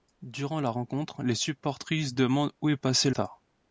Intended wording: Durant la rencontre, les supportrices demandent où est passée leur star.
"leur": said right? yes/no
no